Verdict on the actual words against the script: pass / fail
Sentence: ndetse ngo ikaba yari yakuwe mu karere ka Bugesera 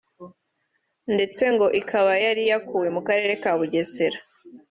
pass